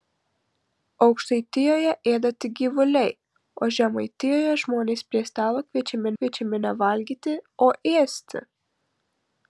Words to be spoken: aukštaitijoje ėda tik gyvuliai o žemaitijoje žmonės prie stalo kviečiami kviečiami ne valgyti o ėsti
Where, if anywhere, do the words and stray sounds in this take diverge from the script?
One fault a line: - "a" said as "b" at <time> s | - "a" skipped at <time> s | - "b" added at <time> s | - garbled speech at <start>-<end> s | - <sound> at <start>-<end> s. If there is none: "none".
none